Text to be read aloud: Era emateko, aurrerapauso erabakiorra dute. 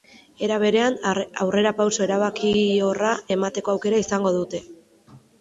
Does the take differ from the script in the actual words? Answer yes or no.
yes